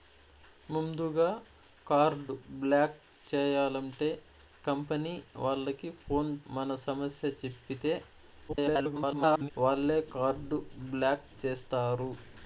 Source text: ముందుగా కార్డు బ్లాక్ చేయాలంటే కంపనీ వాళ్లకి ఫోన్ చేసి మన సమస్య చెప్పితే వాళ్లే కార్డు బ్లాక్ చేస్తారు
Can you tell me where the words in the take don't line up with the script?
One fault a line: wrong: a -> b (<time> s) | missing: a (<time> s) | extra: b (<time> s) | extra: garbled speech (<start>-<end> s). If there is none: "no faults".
missing: చేసి (6.3 s)
extra: garbled speech (8.5-9.5 s)